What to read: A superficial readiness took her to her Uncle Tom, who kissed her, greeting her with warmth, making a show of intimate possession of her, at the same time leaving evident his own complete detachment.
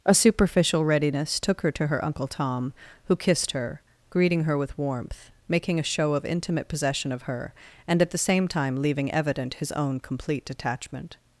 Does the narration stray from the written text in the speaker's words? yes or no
yes